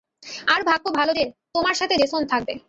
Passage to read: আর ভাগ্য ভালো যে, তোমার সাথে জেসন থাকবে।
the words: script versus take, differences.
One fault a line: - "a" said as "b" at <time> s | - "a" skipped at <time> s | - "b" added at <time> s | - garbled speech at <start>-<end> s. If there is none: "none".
none